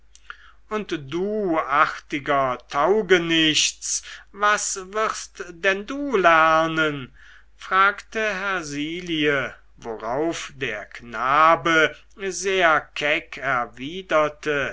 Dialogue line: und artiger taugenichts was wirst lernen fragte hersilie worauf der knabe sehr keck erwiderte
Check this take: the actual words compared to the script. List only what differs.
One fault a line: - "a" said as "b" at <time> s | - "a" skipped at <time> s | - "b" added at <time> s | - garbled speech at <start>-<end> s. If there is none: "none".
- "du" added at 1.1 s
- "denn du" added at 5.5 s